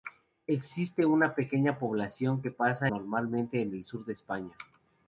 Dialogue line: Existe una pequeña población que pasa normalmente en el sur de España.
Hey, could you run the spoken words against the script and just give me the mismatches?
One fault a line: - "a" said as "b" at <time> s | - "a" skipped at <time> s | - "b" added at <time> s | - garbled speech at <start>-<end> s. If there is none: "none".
none